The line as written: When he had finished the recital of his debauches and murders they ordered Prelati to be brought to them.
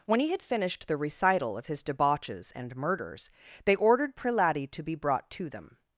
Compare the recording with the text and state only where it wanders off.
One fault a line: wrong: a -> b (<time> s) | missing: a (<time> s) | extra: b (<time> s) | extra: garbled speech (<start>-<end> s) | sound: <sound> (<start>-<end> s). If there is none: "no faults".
no faults